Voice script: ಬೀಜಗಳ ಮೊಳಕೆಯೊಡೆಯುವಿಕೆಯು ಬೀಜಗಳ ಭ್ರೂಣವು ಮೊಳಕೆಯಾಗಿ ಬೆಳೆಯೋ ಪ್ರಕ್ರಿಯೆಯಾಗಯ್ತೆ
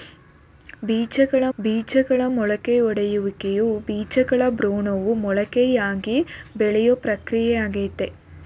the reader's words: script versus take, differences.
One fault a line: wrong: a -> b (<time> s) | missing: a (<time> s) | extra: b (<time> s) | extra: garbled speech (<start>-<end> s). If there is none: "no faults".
extra: ಬೀಜಗಳ (1.6 s)